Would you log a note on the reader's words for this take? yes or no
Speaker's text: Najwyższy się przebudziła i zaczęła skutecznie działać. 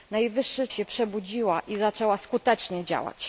no